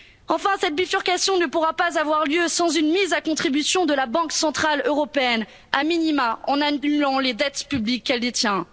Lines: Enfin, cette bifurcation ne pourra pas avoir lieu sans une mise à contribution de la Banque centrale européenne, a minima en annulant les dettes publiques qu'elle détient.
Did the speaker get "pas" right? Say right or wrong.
right